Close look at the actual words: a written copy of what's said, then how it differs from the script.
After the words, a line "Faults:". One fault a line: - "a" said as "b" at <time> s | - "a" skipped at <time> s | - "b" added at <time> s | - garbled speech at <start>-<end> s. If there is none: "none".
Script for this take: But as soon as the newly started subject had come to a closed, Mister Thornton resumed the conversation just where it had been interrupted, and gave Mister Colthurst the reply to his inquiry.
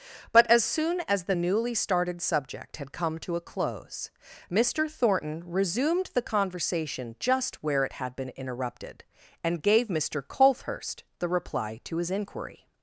But as soon as the newly started subject had come to a close, Mister Thornton resumed the conversation just where it had been interrupted, and gave Mister Colthurst the reply to his inquiry.
Faults:
- "closed" said as "close" at 3.4 s